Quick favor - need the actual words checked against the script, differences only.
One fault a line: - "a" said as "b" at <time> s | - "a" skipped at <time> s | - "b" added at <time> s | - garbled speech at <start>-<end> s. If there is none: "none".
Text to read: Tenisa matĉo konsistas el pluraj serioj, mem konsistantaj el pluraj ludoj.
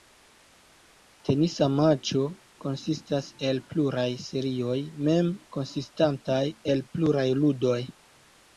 none